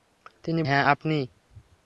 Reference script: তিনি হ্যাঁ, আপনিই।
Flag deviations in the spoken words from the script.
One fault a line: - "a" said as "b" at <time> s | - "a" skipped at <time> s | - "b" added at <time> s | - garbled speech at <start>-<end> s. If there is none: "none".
none